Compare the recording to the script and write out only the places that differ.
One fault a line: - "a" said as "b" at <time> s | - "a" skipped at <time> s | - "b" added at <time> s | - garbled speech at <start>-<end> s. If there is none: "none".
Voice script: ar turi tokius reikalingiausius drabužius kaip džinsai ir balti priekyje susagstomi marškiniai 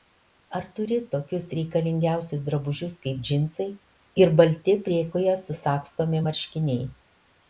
none